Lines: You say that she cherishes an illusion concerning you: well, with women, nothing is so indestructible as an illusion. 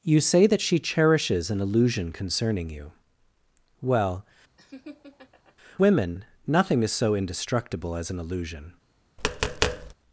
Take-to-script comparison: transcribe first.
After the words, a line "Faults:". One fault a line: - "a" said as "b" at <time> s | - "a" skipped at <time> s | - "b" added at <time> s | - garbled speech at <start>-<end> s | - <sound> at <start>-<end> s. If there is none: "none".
You say that she cherishes an illusion concerning you: well, women, nothing is so indestructible as an illusion.
Faults:
- "with" skipped at 4.2 s
- laugh at 4.6-5.6 s
- tap at 9.2-9.9 s